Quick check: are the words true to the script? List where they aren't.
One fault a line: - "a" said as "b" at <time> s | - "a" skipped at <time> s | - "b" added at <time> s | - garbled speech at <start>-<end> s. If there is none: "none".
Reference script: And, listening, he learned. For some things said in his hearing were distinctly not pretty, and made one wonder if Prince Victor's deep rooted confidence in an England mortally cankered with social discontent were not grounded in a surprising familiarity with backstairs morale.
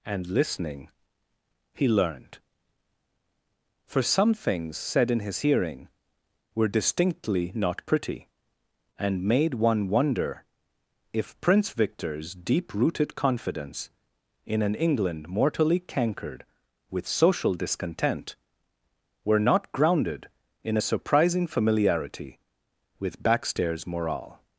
none